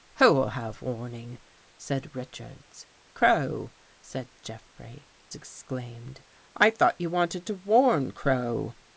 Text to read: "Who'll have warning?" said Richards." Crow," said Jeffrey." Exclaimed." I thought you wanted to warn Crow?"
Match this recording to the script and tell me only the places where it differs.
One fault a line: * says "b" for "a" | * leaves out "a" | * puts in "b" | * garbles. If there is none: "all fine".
all fine